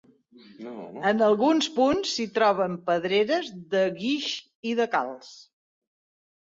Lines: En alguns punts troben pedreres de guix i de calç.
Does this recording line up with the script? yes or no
no